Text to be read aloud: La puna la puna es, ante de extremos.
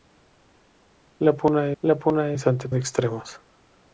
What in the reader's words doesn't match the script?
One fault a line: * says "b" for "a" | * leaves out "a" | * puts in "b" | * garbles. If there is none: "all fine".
all fine